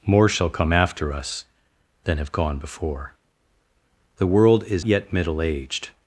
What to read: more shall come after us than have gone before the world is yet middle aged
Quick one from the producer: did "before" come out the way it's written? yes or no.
yes